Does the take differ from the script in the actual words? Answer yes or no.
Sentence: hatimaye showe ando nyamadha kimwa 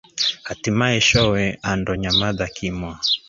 no